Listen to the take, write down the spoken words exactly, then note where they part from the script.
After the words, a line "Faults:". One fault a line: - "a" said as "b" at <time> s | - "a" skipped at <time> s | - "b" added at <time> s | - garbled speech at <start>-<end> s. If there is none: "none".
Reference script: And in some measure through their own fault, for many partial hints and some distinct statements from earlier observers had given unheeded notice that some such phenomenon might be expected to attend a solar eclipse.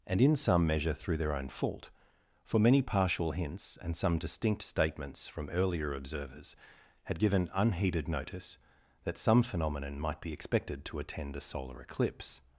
And in some measure through their own fault, for many partial hints and some distinct statements from earlier observers had given unheeded notice that some phenomenon might be expected to attend a solar eclipse.
Faults:
- "such" skipped at 9.4 s